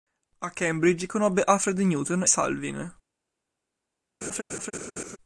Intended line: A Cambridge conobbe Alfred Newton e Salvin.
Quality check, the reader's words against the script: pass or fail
fail